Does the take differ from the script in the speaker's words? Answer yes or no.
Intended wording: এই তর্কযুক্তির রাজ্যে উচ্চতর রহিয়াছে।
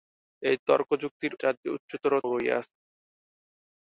no